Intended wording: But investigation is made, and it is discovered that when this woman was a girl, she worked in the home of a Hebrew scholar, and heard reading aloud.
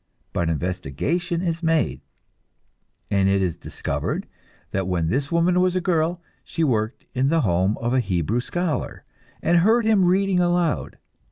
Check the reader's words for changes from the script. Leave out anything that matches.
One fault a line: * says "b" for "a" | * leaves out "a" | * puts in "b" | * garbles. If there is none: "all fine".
* puts in "him"